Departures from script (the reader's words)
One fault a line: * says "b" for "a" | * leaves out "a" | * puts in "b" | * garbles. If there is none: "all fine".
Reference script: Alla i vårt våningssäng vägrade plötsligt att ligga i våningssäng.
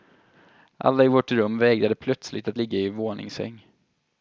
* says "rum" for "våningssäng"